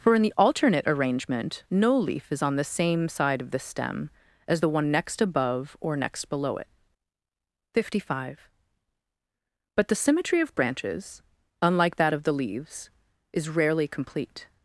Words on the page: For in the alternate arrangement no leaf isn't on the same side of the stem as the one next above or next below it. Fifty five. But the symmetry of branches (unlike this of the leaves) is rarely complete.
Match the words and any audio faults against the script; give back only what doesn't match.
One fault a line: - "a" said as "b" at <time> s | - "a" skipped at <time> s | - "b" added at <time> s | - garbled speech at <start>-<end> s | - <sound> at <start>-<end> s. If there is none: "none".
- "isn't" said as "is" at 2.3 s
- "this" said as "that" at 12.0 s